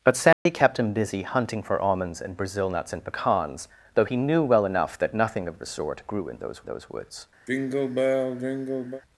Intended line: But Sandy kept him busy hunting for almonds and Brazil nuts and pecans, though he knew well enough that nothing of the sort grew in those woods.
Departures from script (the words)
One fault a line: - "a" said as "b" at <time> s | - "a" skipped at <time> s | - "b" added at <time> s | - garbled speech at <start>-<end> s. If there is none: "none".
- "those" added at 6.6 s